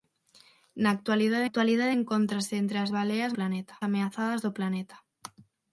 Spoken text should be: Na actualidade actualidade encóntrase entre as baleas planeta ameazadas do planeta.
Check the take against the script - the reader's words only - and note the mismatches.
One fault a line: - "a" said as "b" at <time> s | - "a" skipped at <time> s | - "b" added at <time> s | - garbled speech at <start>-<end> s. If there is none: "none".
none